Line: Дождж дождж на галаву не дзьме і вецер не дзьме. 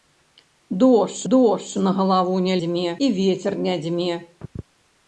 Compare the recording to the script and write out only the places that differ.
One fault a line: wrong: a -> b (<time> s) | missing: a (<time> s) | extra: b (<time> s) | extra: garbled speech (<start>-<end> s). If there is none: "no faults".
no faults